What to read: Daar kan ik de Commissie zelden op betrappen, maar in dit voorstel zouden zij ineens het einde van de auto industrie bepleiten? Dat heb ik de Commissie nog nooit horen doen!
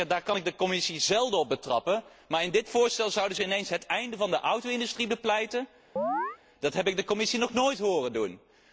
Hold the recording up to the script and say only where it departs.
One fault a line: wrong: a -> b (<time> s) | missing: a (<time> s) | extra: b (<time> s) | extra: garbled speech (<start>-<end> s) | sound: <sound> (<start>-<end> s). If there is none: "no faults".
sound: chirp (6.0-6.4 s)